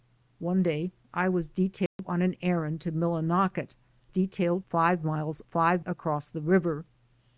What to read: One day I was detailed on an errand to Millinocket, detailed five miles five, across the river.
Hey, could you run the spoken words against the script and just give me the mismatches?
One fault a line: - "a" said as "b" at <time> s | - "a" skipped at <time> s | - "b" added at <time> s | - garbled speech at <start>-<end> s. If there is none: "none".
none